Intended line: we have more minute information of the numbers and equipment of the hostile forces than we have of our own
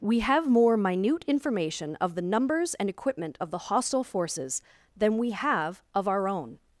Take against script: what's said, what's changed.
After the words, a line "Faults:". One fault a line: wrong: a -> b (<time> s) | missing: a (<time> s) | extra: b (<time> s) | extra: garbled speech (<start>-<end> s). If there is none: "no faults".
we have more minute information of the numbers and equipment of the hostile forces than we have of our own
Faults:
no faults